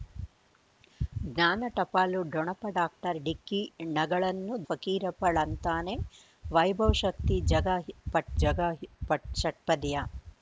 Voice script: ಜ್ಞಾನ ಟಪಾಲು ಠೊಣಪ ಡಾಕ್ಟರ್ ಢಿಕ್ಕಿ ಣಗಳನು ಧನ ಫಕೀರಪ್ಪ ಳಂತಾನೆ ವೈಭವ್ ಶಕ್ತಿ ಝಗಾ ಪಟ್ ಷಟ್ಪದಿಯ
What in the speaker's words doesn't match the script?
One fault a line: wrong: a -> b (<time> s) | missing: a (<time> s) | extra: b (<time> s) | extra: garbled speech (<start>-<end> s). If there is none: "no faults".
missing: ಧನ (4.6 s)
extra: ಝಗಾ ಪಟ್ (8.4 s)